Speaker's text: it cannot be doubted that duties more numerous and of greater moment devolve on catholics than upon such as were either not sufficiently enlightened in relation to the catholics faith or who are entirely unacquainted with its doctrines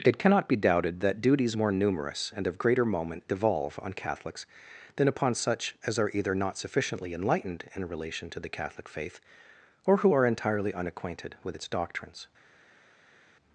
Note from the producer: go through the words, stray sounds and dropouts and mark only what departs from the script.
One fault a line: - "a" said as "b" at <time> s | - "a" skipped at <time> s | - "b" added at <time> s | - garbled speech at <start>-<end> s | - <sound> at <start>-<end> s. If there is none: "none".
- "were" said as "are" at 6.0 s
- "catholics" said as "catholic" at 8.5 s